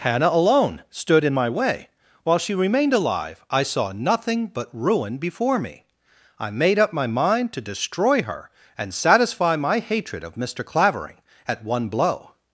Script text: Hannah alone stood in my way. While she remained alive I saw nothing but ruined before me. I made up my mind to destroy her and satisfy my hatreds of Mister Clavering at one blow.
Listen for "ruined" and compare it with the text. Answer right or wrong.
wrong